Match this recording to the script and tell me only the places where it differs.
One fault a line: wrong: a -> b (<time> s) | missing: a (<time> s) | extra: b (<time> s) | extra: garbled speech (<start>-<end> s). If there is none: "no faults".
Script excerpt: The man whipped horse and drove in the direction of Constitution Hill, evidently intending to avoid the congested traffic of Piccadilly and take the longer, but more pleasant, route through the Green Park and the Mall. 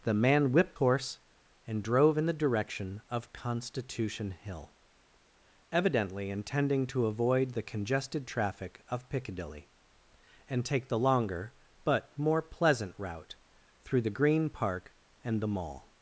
no faults